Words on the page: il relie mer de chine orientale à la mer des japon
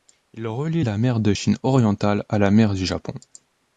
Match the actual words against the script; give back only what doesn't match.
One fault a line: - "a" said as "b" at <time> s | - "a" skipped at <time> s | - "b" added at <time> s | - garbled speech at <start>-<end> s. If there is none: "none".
- "la" added at 0.8 s
- "des" said as "du" at 2.7 s